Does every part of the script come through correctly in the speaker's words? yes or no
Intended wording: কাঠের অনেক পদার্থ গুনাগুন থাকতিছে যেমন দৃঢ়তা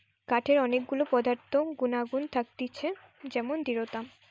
no